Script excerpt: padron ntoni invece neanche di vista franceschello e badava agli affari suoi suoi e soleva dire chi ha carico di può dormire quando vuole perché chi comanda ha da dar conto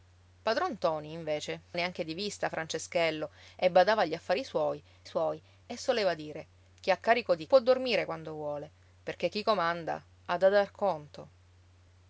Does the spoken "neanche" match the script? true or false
true